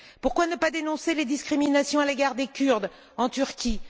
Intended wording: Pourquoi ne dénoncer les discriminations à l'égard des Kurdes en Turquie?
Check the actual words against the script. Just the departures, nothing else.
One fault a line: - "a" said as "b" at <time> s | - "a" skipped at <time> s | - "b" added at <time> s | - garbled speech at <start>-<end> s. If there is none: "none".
- "pas" added at 0.6 s